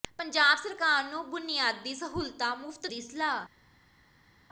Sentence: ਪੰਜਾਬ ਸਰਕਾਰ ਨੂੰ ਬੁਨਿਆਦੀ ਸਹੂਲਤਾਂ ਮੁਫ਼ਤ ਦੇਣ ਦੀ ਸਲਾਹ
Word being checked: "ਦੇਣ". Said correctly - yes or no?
no